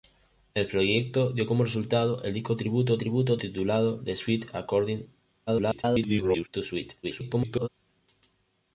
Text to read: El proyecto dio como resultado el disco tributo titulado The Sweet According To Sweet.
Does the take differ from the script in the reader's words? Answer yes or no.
yes